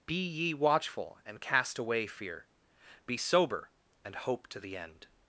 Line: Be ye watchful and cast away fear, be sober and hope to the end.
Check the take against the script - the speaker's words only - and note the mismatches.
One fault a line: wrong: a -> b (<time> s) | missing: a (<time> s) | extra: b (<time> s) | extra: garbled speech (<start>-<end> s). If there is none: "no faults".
no faults